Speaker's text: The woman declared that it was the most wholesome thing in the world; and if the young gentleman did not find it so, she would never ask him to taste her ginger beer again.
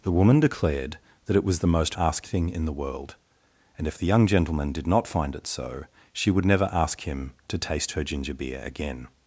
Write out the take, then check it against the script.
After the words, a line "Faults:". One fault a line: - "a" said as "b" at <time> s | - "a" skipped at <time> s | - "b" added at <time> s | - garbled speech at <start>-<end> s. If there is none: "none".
The woman declared that it was the most ask thing in the world; and if the young gentleman did not find it so, she would never ask him to taste her ginger beer again.
Faults:
- "wholesome" said as "ask" at 2.0 s